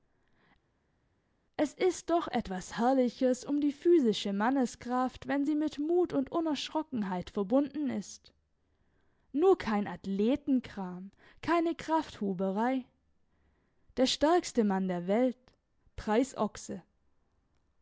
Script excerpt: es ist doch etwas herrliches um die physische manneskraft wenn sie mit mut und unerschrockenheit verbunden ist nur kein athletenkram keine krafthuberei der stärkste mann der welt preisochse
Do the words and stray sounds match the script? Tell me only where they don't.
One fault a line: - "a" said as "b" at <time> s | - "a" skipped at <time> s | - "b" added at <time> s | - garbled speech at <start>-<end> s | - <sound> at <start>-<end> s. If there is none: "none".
none